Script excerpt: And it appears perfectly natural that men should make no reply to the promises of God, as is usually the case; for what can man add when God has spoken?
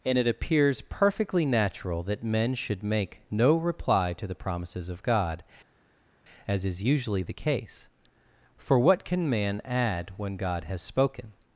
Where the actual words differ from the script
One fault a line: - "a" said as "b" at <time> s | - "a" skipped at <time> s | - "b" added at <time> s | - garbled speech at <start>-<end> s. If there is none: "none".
none